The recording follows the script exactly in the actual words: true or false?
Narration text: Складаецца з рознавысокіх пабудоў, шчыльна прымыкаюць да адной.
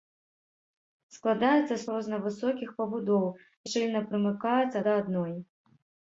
true